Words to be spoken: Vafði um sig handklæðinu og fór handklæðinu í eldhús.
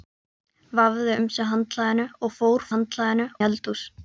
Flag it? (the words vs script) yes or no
no